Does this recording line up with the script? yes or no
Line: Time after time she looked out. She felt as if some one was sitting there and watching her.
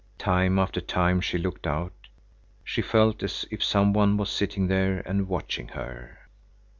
yes